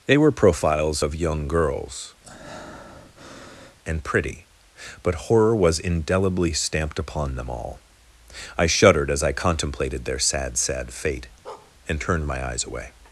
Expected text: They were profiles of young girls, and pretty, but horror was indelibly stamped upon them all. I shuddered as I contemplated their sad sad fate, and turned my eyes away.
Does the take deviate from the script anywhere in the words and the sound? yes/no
yes